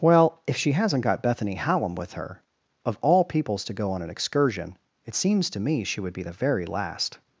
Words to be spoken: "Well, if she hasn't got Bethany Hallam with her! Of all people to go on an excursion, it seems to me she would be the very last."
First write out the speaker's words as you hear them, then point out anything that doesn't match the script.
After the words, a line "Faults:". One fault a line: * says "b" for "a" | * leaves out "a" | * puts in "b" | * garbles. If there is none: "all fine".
"Well, if she hasn't got Bethany Hallam with her! Of all peoples to go on an excursion, it seems to me she would be the very last."
Faults:
* says "peoples" for "people"